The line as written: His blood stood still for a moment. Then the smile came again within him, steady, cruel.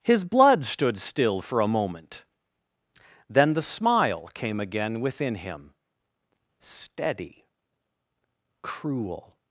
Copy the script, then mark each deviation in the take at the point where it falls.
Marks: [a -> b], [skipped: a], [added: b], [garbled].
His blood stood still for a moment. Then the smile came again within him, steady, cruel.